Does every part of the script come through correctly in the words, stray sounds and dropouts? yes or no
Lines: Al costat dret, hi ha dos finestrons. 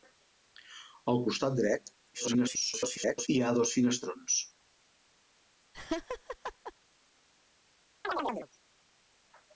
no